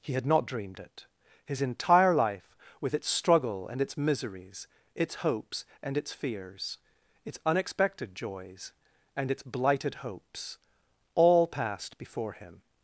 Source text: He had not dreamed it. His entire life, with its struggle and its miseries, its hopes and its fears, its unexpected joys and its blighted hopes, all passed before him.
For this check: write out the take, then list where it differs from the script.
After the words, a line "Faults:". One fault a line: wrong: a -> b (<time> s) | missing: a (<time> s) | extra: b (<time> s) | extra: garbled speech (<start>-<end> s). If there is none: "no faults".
He had not dreamed it. His entire life, with its struggle and its miseries, its hopes and its fears, its unexpected joys and its blighted hopes, all passed before him.
Faults:
no faults